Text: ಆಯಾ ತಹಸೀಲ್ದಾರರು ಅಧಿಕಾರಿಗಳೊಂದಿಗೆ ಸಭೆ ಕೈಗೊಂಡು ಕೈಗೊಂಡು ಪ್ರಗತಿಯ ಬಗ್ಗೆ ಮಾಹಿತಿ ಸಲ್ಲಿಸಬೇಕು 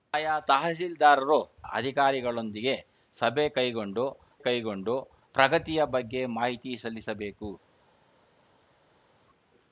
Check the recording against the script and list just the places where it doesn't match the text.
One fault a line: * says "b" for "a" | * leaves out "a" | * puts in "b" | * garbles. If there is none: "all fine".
all fine